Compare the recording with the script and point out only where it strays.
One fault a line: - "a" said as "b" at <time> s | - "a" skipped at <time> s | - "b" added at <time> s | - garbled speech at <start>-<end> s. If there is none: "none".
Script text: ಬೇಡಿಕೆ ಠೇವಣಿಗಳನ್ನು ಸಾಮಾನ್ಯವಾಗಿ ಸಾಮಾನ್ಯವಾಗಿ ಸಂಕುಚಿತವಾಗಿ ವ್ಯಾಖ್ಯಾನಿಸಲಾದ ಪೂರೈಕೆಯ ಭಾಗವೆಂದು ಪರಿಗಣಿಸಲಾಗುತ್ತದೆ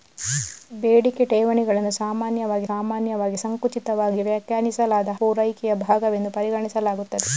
none